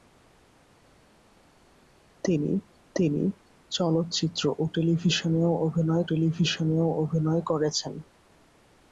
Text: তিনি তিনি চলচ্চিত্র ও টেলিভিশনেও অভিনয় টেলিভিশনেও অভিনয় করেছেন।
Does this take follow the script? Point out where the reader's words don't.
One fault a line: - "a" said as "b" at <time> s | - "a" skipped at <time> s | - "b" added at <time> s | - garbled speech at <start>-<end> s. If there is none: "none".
none